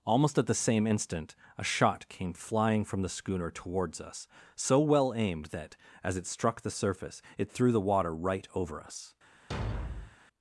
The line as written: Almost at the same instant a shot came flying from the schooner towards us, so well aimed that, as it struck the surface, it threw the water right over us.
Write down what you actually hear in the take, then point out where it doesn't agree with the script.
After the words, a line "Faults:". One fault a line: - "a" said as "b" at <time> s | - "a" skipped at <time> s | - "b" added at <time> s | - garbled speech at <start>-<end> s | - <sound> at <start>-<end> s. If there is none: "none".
Almost at the same instant a shot came flying from the schooner towards us, so well aimed that, as it struck the surface, it threw the water right over us.
Faults:
- thud at 9.5-10.2 s